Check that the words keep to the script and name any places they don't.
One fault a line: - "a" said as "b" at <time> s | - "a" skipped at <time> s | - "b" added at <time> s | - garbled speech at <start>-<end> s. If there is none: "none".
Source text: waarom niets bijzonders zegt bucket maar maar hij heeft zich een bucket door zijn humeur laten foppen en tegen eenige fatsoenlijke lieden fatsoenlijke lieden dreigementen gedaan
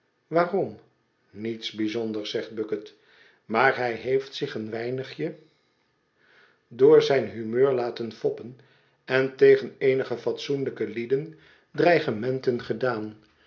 - "maar" skipped at 3.8 s
- "bucket" said as "weinigje" at 4.7 s
- "fatsoenlijke lieden" skipped at 11.4 s